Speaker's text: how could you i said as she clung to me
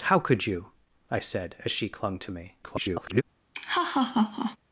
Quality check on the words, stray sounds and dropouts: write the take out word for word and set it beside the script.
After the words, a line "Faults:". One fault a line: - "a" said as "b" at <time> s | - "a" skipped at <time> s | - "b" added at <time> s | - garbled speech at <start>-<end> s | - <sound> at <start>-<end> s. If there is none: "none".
how could you i said as she clung to me [garbled]
Faults:
- garbled speech at 2.6-3.2 s
- laugh at 3.5-4.6 s